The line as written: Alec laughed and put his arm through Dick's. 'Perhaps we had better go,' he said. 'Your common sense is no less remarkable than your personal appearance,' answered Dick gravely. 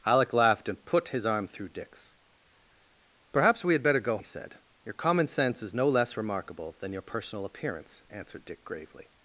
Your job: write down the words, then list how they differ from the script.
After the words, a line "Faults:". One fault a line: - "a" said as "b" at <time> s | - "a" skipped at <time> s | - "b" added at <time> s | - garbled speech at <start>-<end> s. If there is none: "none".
Alec laughed and put his arm through Dick's. 'Perhaps we had better go,' he said. 'Your common sense is no less remarkable than your personal appearance,' answered Dick gravely.
Faults:
none